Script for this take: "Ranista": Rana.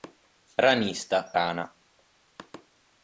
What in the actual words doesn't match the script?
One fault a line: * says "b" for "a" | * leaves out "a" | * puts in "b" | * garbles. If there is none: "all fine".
all fine